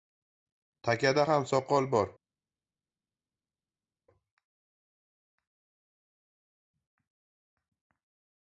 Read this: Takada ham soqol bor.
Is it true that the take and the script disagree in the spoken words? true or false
false